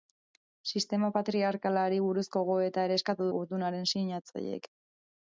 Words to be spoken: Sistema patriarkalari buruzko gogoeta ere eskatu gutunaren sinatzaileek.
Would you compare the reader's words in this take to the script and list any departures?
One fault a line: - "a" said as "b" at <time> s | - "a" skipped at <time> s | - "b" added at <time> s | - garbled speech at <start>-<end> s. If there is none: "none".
none